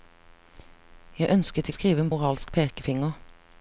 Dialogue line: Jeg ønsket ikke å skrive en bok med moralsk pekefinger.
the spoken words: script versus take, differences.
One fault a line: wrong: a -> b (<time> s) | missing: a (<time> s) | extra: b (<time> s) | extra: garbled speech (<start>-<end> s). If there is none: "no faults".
missing: ikke (1.7 s)
missing: bok med (2.1 s)